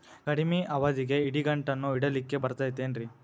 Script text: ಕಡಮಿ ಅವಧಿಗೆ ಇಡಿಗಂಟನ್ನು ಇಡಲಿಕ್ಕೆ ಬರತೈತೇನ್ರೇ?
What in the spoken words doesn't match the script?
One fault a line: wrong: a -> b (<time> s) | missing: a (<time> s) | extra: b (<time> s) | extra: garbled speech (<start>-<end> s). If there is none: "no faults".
no faults